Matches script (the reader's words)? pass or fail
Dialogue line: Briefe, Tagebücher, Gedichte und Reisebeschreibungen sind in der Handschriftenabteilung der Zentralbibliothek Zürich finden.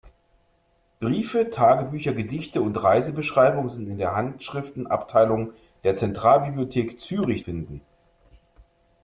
pass